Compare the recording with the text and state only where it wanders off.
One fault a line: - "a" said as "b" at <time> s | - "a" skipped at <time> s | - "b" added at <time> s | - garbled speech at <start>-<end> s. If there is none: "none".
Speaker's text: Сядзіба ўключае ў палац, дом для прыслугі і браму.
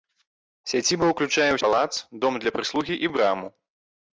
none